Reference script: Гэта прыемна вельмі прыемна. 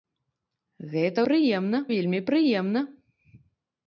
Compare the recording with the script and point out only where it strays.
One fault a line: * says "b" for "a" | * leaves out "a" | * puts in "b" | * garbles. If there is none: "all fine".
all fine